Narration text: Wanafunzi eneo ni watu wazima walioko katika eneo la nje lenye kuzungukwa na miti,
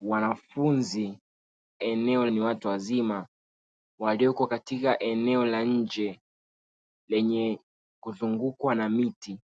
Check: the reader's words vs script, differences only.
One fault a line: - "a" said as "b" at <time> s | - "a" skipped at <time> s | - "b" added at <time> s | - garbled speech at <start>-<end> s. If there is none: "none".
none